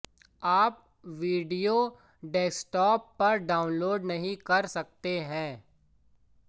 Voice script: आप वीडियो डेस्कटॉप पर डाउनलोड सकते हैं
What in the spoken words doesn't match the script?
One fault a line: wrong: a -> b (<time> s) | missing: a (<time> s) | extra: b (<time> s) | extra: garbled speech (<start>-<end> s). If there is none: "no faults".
extra: नहीं कर (4.0 s)